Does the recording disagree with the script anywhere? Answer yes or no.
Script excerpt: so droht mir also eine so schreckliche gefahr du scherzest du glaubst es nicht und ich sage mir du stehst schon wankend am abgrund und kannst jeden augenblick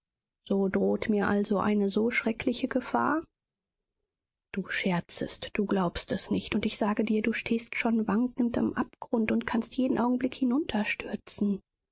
yes